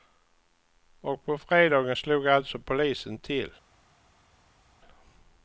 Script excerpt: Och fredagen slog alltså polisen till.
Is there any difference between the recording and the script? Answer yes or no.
yes